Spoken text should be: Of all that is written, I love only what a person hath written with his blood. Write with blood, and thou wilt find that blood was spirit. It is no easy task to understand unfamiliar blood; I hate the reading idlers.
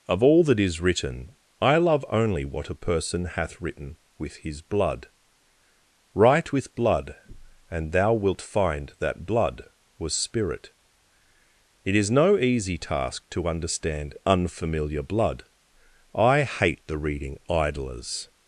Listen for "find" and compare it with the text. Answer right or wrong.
right